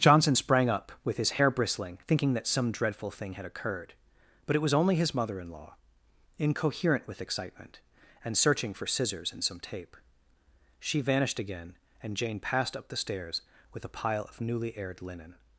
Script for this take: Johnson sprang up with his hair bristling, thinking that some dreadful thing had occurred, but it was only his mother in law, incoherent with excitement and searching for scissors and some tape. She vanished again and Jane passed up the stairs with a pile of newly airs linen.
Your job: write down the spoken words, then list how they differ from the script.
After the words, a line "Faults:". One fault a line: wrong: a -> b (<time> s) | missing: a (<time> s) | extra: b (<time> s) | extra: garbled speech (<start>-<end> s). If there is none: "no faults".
Johnson sprang up with his hair bristling, thinking that some dreadful thing had occurred, but it was only his mother in law, incoherent with excitement and searching for scissors and some tape. She vanished again and Jane passed up the stairs with a pile of newly aired linen.
Faults:
wrong: airs -> aired (14.8 s)